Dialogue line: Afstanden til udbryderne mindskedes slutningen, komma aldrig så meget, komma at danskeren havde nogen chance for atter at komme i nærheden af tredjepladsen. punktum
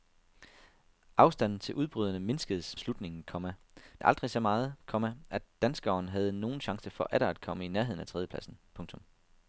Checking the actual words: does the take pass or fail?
pass